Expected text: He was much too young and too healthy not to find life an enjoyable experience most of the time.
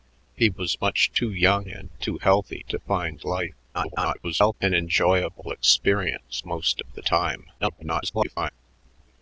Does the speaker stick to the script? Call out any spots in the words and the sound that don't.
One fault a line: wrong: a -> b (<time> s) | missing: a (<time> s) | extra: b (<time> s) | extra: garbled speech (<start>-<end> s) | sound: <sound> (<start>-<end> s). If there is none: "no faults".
missing: not (2.6 s)
extra: garbled speech (3.7-4.5 s)
extra: garbled speech (7.6-8.5 s)